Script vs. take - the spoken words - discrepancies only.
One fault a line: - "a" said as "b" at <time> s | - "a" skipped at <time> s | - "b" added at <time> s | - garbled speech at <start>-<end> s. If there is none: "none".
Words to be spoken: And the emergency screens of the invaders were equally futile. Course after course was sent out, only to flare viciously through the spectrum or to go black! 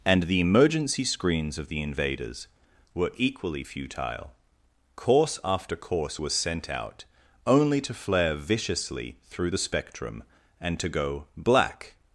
- "or" said as "and" at 10.6 s